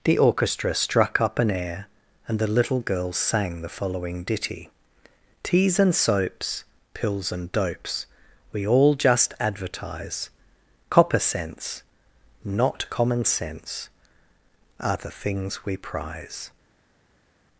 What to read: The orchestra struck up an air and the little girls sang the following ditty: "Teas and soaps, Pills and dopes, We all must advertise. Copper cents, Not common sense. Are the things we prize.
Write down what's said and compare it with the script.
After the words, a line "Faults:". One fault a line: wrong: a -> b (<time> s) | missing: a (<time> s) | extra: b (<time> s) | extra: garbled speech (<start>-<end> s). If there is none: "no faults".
The orchestra struck up an air and the little girls sang the following ditty: "Teas and soaps, Pills and dopes, We all just advertise. Copper cents, Not common sense. Are the things we prize.
Faults:
wrong: must -> just (8.9 s)